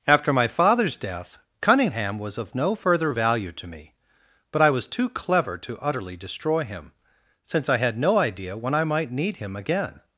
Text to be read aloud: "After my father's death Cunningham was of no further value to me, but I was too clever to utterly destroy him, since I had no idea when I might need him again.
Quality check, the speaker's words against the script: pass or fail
pass